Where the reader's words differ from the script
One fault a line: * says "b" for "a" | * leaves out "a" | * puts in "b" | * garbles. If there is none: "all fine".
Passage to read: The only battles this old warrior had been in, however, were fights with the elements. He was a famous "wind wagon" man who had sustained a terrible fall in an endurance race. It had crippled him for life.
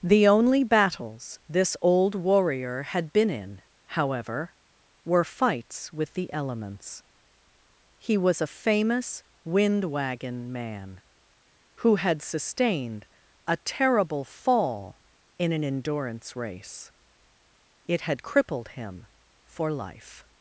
all fine